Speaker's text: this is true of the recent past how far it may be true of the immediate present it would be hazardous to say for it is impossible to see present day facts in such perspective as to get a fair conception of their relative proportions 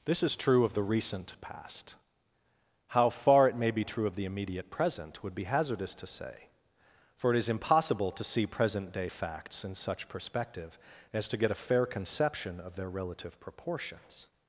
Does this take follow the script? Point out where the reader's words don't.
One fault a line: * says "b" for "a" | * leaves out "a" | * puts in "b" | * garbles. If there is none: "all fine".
* leaves out "it"